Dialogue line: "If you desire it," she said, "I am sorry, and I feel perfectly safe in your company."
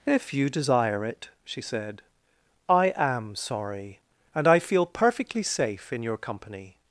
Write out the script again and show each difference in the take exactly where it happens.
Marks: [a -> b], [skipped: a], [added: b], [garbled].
"If you desire it," she said, "I am sorry, and I feel perfectly safe in your company."